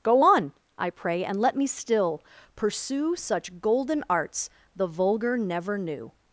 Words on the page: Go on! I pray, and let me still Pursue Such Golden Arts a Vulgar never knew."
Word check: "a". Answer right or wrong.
wrong